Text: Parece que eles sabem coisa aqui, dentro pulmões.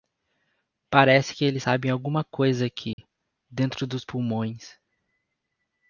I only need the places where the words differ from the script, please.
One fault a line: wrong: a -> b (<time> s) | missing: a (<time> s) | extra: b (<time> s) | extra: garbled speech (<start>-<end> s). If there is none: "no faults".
extra: alguma (1.9 s)
extra: dos (3.9 s)